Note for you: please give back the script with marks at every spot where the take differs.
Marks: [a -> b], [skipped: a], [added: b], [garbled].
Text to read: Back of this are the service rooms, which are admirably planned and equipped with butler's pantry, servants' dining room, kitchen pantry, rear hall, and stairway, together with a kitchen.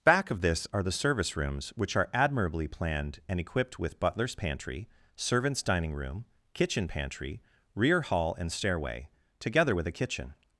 Back of this are the service rooms, which are admirably planned and equipped with butler's pantry, servants' dining room, kitchen pantry, rear hall, and stairway, together with a kitchen.